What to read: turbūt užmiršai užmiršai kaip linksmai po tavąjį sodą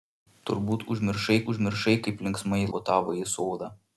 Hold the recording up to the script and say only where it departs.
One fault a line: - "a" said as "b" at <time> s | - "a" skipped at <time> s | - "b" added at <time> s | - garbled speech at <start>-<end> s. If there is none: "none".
none